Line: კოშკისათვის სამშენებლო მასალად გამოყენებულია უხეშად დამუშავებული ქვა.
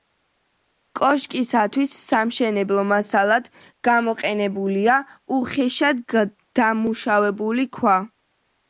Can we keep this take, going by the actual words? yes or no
yes